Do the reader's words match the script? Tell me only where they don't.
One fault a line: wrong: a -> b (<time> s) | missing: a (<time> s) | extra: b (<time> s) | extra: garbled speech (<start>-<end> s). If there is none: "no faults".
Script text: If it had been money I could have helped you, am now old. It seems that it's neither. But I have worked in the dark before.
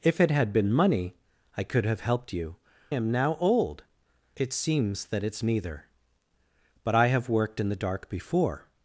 no faults